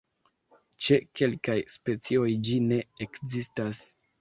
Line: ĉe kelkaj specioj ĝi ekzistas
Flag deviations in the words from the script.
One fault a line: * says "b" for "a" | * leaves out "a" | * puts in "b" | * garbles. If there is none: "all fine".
* puts in "ne"